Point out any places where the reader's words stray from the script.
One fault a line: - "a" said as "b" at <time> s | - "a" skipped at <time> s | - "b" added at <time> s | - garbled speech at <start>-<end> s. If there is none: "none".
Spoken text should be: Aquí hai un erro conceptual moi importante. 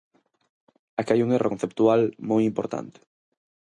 none